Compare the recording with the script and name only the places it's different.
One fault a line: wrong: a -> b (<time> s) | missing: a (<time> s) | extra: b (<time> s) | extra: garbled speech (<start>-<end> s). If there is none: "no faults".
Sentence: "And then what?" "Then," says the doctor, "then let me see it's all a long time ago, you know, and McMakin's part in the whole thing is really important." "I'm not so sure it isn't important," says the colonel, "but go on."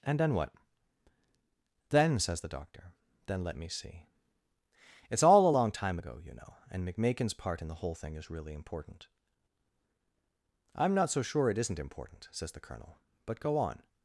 no faults